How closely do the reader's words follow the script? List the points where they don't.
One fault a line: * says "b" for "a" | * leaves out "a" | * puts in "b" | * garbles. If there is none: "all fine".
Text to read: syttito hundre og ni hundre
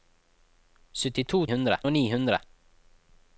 all fine